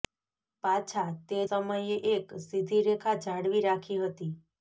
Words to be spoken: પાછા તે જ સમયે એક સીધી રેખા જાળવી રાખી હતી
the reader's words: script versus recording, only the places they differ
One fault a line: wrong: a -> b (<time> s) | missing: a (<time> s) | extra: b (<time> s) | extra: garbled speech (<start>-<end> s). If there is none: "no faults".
missing: જ (1.4 s)